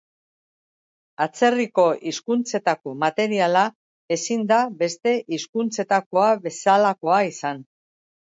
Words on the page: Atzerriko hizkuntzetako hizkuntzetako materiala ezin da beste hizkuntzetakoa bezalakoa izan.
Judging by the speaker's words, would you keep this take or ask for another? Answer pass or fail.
fail